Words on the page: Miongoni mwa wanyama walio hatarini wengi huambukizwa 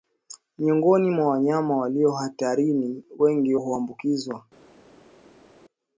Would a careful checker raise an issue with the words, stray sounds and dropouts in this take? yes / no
no